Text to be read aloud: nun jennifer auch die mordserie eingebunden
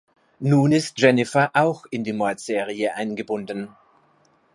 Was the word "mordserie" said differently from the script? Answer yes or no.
no